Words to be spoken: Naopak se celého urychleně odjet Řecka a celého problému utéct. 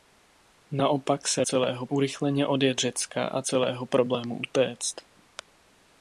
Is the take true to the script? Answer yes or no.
yes